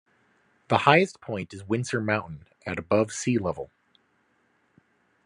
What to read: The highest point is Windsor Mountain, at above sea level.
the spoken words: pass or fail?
pass